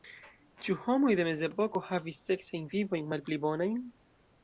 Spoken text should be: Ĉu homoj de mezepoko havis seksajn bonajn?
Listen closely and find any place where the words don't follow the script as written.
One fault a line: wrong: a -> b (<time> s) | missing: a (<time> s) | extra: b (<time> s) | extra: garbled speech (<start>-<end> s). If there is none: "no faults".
extra: vivojn malpli (2.7 s)